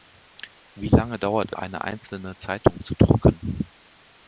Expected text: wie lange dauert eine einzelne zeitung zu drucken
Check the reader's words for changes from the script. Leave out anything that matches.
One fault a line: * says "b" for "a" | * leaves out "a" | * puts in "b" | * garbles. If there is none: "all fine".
all fine